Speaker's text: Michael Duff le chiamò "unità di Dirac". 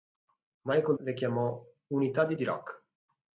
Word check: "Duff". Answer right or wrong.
wrong